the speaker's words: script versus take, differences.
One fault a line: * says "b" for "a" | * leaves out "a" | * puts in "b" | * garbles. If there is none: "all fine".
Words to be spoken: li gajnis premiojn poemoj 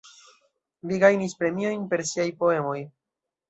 * puts in "per siaj"